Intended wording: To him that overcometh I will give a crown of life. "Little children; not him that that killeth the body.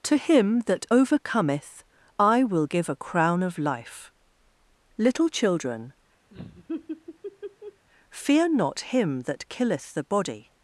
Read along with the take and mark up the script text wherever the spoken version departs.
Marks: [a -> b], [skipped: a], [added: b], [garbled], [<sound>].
To him that overcometh I will give a crown of life. "Little children; [laugh] [added: fear] not him that [skipped: that] killeth the body.